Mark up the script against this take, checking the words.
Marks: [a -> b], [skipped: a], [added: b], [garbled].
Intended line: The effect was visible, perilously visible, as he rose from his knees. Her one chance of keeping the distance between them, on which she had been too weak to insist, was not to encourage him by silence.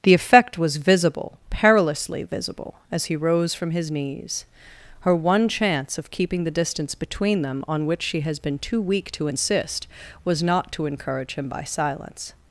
The effect was visible, perilously visible, as he rose from his knees. Her one chance of keeping the distance between them, on which she [had -> has] been too weak to insist, was not to encourage him by silence.